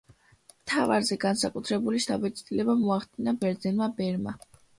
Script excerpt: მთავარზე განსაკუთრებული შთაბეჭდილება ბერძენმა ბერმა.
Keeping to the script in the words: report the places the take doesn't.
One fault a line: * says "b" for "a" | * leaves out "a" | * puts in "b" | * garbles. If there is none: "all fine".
* puts in "მოახდინა"